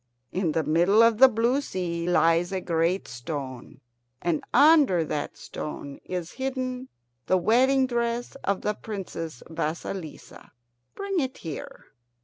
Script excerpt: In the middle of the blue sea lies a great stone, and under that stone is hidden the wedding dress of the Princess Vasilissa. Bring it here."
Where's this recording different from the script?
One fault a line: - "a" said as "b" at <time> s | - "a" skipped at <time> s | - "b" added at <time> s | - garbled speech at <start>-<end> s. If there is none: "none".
none